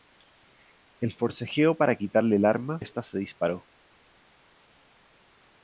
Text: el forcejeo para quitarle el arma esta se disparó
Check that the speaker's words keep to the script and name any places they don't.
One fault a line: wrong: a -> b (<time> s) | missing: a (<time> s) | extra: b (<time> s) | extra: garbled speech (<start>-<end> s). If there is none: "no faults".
no faults